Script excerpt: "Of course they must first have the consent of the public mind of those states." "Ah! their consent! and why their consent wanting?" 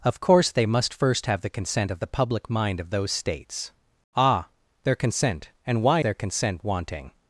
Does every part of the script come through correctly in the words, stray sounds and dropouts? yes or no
yes